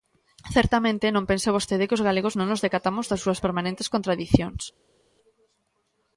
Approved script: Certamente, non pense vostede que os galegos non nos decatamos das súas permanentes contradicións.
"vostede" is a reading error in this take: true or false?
false